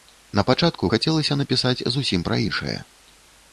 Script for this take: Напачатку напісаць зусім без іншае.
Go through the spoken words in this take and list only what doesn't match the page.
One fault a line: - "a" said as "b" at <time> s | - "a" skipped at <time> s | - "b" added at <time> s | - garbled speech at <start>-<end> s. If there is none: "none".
- "хацелася" added at 0.9 s
- "без" said as "пра" at 2.3 s